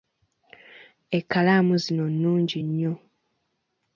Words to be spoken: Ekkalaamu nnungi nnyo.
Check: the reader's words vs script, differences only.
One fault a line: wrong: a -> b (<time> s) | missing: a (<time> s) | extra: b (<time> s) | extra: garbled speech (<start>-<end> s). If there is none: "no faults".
extra: zino (1.8 s)